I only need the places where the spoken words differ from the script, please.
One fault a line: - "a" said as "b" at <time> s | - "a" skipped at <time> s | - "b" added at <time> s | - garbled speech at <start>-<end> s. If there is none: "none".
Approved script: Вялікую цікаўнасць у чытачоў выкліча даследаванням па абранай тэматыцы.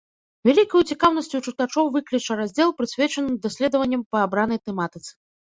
- "раздзел прысвечаны" added at 2.4 s